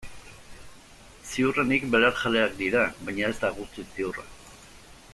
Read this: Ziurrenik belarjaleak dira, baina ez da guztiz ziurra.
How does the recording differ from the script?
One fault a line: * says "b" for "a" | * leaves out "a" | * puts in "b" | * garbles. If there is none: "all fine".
all fine